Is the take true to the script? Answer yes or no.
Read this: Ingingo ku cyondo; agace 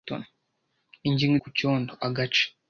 yes